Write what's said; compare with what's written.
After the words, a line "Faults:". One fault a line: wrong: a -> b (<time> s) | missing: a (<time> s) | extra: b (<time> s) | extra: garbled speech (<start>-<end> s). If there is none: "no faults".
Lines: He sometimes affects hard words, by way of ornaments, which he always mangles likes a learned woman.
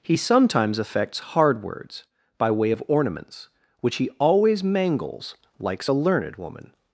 He sometimes affects hard words, by way of ornaments, which he always mangles likes a learned woman.
Faults:
no faults